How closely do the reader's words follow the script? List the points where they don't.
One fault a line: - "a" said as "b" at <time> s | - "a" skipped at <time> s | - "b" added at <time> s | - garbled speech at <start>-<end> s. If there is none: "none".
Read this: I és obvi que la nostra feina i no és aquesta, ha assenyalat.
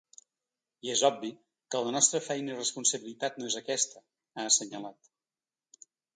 - "responsabilitat" added at 2.6 s